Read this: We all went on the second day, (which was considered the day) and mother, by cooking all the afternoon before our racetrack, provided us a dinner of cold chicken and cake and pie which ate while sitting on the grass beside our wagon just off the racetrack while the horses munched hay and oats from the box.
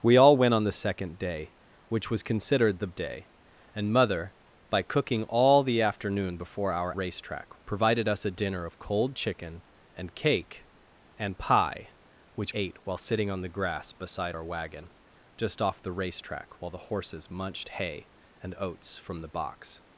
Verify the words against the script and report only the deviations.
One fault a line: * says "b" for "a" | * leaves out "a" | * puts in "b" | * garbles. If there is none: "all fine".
all fine